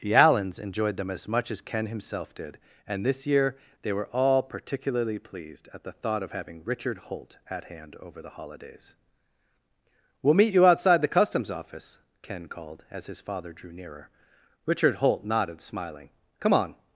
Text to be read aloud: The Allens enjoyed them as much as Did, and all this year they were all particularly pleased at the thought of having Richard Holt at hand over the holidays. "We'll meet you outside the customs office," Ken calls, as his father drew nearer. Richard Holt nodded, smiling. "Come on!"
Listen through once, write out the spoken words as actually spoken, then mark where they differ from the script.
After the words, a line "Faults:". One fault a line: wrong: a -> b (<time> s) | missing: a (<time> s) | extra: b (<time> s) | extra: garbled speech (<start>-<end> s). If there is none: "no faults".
The Allens enjoyed them as much as Ken himself did, and this year they were all particularly pleased at the thought of having Richard Holt at hand over the holidays. "We'll meet you outside the customs office," Ken called, as his father drew nearer. Richard Holt nodded, smiling. "Come on!"
Faults:
extra: Ken himself (1.6 s)
missing: all (3.0 s)
wrong: calls -> called (12.5 s)